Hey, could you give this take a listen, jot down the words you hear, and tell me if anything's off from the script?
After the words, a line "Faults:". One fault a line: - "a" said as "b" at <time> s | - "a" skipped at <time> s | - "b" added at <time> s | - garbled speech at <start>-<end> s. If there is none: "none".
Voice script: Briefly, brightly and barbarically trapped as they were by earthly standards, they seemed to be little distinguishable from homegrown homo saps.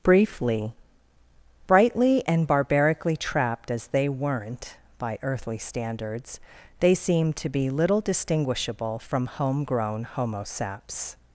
Briefly, brightly and barbarically trapped as they weren't by earthly standards, they seemed to be little distinguishable from homegrown homo saps.
Faults:
- "were" said as "weren't" at 4.1 s